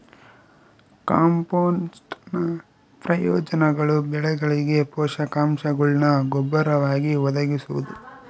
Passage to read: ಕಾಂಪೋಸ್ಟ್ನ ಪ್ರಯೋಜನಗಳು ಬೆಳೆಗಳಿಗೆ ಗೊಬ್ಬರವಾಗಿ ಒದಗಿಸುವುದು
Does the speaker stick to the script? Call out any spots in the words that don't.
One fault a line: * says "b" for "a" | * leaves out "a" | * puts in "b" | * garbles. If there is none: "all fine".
* puts in "ಪೋಷಕಾಂಶಗುಳ್ನ"